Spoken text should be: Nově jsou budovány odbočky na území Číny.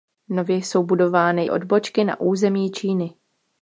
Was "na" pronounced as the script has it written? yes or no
yes